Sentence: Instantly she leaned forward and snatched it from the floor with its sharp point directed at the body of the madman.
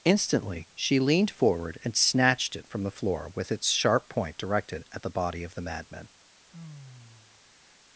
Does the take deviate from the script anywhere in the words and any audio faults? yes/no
yes